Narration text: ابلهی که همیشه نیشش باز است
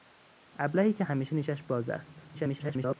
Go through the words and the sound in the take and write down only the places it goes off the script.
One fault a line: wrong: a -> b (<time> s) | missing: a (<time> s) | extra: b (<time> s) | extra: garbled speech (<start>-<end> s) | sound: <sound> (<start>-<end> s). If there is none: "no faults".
extra: garbled speech (2.3-3.0 s)